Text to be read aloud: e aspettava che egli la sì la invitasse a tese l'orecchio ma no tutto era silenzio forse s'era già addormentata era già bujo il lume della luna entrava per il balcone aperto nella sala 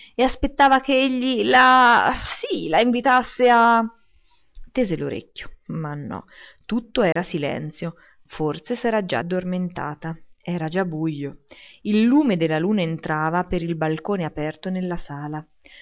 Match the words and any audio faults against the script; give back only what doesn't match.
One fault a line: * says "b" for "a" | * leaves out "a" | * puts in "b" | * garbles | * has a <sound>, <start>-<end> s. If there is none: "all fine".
* has a dropout, 7.1-7.2 s